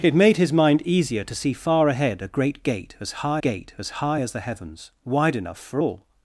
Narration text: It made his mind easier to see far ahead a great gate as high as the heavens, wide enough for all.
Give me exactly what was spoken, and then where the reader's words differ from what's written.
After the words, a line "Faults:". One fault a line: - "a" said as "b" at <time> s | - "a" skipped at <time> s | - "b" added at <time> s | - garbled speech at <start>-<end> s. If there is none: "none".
It made his mind easier to see far ahead a great gate as high gate as high as the heavens, wide enough for all.
Faults:
- "gate as high" added at 3.4 s